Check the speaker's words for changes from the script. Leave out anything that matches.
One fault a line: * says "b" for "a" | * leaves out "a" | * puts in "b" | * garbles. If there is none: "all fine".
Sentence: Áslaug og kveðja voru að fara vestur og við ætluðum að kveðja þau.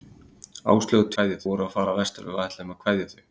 all fine